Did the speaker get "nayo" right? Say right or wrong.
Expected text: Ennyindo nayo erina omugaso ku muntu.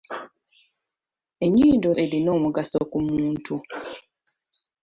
wrong